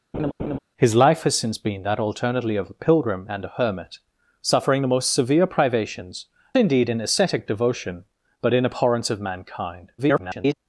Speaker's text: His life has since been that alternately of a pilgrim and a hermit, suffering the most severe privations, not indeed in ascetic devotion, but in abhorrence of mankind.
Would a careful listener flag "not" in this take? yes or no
yes